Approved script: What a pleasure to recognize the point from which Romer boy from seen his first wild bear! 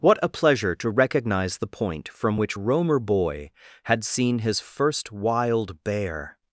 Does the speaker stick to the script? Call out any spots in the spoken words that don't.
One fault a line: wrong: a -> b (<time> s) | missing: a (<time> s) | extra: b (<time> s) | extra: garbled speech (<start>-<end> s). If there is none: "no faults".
wrong: from -> had (3.8 s)